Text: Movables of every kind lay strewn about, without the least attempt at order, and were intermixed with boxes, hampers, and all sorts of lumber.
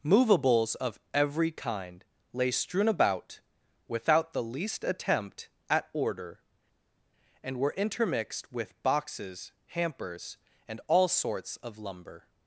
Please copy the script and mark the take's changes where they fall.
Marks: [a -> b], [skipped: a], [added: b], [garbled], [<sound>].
Movables of every kind lay strewn about, without the least attempt at order, and were intermixed with boxes, hampers, and all sorts of lumber.